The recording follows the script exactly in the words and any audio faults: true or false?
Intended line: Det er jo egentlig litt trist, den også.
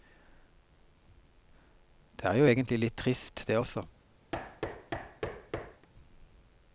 false